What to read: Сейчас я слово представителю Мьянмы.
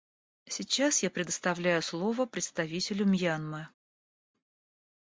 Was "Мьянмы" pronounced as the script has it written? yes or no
yes